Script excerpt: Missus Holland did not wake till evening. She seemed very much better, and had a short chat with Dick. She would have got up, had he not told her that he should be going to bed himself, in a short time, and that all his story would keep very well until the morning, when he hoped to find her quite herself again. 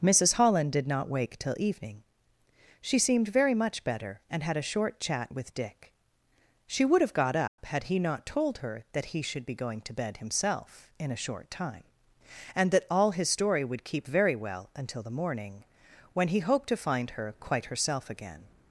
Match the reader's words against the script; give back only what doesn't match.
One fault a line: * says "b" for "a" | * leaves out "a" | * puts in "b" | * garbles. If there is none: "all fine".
all fine